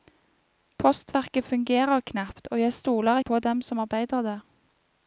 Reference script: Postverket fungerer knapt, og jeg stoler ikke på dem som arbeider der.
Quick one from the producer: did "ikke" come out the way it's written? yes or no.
no